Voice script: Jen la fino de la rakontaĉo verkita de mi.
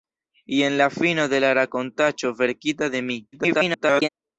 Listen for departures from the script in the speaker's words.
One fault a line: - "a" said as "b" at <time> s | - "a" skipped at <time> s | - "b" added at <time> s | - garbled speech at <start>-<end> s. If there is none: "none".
- garbled speech at 3.3-4.1 s